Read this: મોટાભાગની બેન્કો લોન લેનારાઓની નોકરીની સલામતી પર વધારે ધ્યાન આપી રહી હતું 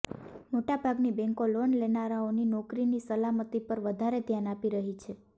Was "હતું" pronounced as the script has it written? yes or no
no